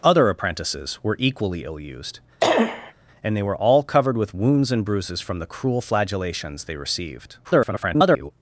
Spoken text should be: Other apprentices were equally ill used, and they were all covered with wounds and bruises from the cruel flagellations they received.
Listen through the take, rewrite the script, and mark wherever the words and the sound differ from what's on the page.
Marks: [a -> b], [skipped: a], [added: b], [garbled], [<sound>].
Other apprentices were equally ill used, [cough] and they were all covered with wounds and bruises from the cruel flagellations they received. [garbled]